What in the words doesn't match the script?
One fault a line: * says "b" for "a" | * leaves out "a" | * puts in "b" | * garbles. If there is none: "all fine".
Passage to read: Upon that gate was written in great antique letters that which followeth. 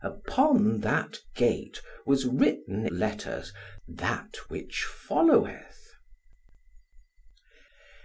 * leaves out "in great antique"